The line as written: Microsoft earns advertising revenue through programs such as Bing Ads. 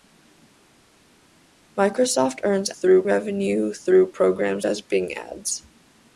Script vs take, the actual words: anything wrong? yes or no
yes